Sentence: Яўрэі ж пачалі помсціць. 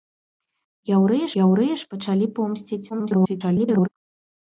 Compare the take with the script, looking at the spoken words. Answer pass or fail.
fail